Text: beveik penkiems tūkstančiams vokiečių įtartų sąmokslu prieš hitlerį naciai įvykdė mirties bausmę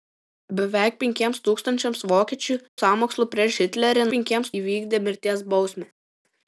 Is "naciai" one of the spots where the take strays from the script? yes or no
yes